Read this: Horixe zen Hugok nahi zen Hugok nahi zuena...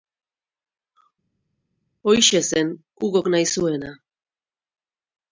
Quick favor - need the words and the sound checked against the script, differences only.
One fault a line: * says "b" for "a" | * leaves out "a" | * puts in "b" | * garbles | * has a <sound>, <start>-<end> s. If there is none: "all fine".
* leaves out "zen Hugok nahi"